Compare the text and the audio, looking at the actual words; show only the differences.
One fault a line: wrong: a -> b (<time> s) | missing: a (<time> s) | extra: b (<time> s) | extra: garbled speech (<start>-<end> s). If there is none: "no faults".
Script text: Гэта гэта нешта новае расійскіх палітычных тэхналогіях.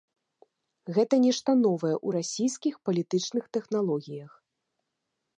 missing: гэта (1.1 s)
extra: ў (1.9 s)